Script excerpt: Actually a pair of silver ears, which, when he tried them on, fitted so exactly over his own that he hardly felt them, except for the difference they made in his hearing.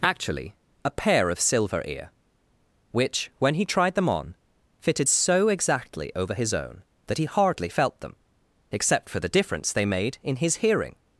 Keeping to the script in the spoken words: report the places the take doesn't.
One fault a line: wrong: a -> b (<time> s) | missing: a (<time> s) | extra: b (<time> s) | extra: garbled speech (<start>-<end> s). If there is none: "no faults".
wrong: ears -> ear (1.9 s)